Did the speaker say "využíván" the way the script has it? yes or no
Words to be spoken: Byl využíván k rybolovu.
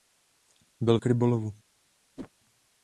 no